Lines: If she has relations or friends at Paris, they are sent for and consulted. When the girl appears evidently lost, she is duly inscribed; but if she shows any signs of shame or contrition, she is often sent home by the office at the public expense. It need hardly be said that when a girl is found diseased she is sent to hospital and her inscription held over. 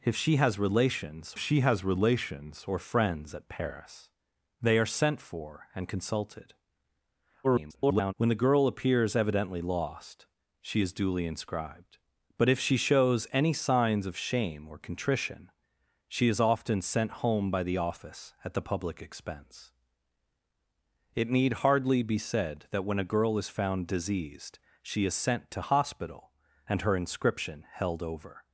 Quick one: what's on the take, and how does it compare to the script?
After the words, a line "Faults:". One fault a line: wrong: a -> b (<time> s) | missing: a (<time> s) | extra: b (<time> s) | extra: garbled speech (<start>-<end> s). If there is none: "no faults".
If she has relations she has relations or friends at Paris, they are sent for and consulted. [garbled] When the girl appears evidently lost, she is duly inscribed; but if she shows any signs of shame or contrition, she is often sent home by the office at the public expense. It need hardly be said that when a girl is found diseased she is sent to hospital and her inscription held over.
Faults:
extra: she has relations (1.4 s)
extra: garbled speech (7.4-8.1 s)